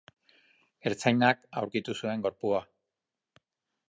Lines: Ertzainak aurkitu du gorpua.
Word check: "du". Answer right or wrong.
wrong